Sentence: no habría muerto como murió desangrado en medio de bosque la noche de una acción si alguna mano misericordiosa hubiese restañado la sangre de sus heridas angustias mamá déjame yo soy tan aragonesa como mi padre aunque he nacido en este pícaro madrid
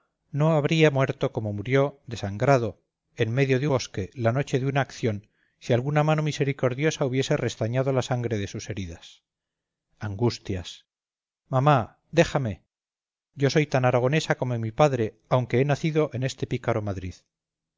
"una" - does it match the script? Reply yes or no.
yes